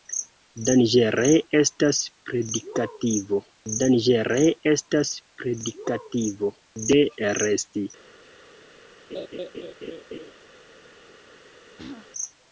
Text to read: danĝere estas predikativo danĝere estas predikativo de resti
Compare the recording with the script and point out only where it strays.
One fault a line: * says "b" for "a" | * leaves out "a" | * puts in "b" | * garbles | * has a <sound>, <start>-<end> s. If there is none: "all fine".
* has a laugh, 9.1-10.3 s
* has a throat clearing, 11.8-12.1 s